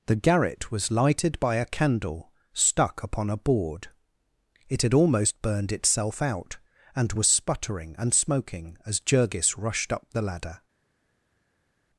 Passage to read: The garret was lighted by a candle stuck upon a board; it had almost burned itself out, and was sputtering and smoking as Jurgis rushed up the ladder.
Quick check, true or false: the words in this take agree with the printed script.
true